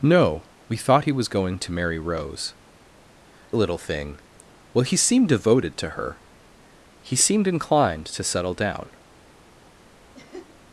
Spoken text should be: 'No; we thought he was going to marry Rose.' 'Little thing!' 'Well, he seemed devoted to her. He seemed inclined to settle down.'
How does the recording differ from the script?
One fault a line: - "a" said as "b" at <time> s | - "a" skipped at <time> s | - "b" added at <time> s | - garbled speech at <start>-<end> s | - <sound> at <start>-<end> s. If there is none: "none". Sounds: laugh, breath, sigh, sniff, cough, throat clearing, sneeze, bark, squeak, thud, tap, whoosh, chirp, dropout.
- laugh at 10.1-10.6 s